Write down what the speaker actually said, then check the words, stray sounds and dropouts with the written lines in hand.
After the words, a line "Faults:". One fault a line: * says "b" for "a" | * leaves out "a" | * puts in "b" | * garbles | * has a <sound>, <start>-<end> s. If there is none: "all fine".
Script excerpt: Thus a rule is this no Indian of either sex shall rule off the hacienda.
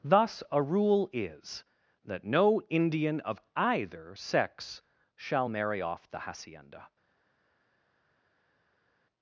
Thus a rule is that no Indian of either sex shall marry off the hacienda.
Faults:
* says "that" for "this"
* says "marry" for "rule"